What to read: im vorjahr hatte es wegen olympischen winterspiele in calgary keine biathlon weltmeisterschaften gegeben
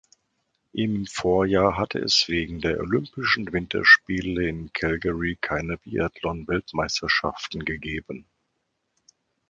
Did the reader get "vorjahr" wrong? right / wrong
right